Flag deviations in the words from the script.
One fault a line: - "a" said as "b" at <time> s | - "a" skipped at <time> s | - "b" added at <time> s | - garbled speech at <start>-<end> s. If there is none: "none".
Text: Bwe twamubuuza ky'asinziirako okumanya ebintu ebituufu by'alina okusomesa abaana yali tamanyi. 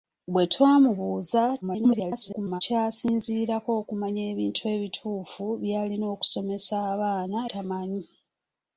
- garbled speech at 1.6-2.6 s
- "yali" skipped at 7.4 s